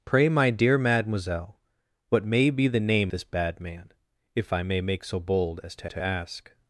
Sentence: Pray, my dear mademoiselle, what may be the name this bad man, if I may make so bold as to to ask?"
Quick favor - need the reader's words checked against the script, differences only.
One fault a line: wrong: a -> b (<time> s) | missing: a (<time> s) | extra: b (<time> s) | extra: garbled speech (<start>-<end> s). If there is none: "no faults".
no faults